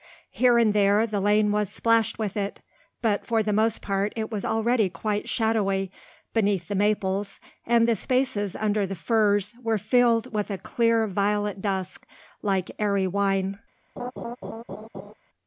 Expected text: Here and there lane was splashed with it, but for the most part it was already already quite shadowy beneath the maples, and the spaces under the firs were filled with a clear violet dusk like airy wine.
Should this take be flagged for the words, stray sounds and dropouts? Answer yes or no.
yes